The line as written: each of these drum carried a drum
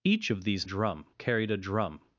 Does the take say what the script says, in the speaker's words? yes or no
yes